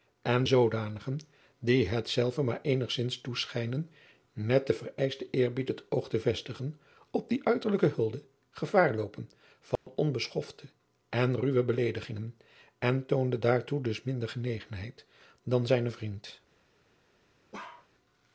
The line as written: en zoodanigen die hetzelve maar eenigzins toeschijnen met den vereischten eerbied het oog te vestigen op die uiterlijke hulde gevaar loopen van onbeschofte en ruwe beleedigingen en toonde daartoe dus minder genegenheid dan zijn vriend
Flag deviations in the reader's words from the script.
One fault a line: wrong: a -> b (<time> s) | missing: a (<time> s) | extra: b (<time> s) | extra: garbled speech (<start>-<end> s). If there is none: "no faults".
no faults